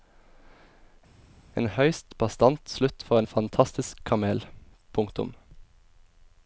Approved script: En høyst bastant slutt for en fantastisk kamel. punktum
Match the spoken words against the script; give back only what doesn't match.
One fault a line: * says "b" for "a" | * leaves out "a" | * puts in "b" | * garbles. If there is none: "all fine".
all fine